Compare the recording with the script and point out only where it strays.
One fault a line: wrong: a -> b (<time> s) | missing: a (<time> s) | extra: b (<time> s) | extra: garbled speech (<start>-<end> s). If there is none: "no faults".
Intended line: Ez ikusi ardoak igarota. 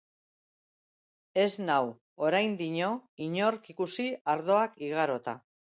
extra: nau oraindino inork (1.7 s)